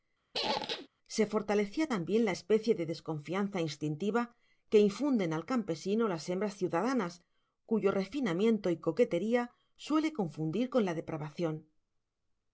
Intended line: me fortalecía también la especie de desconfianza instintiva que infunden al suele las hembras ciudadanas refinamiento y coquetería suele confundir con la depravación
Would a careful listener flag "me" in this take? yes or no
yes